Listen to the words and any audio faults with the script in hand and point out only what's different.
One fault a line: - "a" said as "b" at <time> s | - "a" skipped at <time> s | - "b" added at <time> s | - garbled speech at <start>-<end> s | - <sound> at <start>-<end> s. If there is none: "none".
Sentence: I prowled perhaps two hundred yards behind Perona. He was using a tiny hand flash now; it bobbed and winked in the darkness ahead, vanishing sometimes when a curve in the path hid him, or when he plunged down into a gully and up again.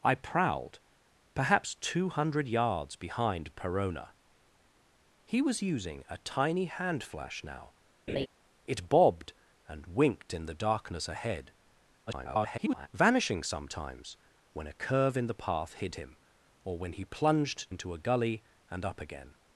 - laugh at 8.1-8.3 s
- garbled speech at 12.1-12.9 s
- "down" skipped at 17.7 s